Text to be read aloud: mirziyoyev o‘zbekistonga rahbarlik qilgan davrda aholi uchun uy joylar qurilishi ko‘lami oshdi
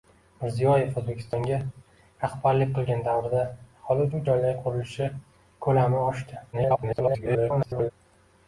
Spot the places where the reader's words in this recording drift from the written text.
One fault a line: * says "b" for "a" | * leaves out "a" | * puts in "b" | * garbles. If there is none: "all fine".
* leaves out "uchun"
* garbles